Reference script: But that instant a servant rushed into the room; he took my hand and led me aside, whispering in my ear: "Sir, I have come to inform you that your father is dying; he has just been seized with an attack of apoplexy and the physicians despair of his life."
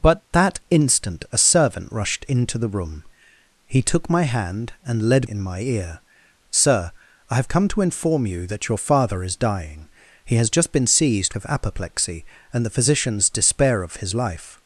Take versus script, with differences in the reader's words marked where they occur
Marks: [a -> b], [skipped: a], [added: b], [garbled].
But that instant a servant rushed into the room; he took my hand and led [skipped: me aside, whispering] in my ear: "Sir, I have come to inform you that your father is dying; he has just been seized [skipped: with an attack] of apoplexy and the physicians despair of his life."